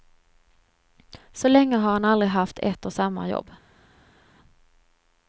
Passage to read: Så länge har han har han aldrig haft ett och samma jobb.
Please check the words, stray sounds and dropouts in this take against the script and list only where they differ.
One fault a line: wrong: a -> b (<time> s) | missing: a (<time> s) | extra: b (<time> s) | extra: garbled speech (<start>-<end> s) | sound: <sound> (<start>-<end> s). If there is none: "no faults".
missing: har han (2.0 s)